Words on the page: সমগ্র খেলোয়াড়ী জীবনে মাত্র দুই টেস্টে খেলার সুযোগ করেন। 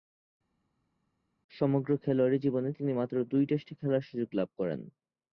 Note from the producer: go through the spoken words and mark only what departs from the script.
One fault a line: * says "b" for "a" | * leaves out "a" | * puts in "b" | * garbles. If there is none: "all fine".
* puts in "তিনি"
* puts in "লাভ"